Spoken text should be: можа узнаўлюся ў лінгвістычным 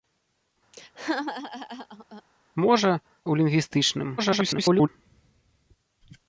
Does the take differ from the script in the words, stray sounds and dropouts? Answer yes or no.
yes